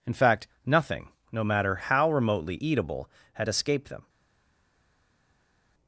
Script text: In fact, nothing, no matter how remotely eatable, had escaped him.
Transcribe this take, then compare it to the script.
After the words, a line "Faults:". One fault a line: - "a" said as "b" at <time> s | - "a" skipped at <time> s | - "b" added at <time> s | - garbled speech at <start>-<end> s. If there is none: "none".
In fact, nothing, no matter how remotely eatable, had escaped them.
Faults:
- "him" said as "them" at 3.9 s